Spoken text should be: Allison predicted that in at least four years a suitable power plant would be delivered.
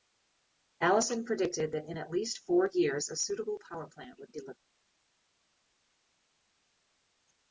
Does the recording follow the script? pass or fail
fail